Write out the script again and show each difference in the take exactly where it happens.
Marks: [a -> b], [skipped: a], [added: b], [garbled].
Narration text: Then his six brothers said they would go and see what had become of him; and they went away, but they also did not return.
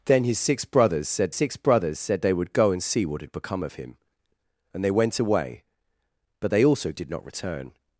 Then his six brothers said [added: six brothers said] they would go and see what had become of him; and they went away, but they also did not return.